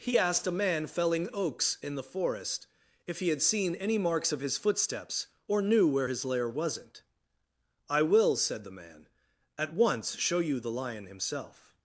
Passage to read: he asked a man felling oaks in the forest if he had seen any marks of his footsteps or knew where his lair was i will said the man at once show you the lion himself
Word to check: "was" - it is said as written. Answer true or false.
false